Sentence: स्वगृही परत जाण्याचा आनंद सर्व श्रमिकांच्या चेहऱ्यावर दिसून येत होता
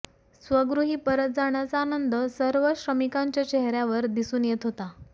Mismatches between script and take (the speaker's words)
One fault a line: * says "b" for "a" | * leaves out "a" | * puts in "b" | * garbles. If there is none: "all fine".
all fine